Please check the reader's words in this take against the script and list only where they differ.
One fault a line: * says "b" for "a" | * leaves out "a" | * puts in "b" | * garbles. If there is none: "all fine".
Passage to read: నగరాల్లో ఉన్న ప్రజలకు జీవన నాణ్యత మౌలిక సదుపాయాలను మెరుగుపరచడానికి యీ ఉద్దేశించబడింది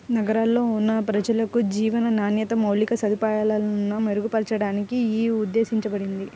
all fine